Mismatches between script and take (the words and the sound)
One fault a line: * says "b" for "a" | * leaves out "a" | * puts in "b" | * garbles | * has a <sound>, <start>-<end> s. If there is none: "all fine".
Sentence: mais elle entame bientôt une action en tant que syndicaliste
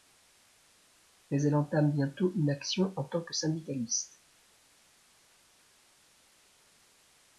all fine